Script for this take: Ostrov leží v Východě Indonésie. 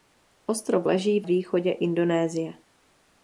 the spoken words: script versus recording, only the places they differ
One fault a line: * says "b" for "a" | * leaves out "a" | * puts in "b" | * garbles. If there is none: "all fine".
all fine